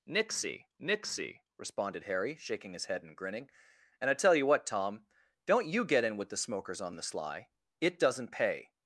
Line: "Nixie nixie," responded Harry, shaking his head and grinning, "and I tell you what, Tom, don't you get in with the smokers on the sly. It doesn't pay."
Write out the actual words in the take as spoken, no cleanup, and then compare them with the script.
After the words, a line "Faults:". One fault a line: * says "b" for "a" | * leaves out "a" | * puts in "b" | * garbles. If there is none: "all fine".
"Nixie nixie," responded Harry, shaking his head and grinning, "and I tell you what, Tom, don't you get in with the smokers on the sly. It doesn't pay."
Faults:
all fine